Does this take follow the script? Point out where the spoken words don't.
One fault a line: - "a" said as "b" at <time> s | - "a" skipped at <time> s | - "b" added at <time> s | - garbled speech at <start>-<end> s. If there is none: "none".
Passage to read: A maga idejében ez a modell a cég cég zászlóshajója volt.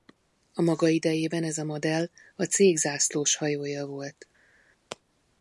- "cég" skipped at 2.8 s